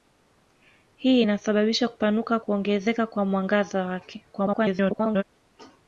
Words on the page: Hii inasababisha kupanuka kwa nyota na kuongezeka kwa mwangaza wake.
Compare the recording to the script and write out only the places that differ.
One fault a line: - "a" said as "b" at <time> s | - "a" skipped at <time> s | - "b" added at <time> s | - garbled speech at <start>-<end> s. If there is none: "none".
- "kwa nyota na" skipped at 2.4 s
- garbled speech at 4.3-5.2 s